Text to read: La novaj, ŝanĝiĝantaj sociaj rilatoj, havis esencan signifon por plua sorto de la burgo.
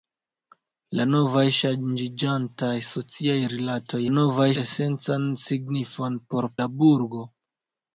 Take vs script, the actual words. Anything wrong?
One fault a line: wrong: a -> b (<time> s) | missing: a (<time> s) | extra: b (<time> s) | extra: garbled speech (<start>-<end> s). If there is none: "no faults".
wrong: havis -> novaj (4.1 s)
missing: plua sorto de (6.5 s)